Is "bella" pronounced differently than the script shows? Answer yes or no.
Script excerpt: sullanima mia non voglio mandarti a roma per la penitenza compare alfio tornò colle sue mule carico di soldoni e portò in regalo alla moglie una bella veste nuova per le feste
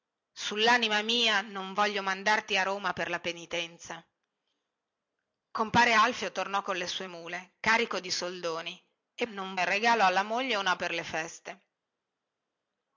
yes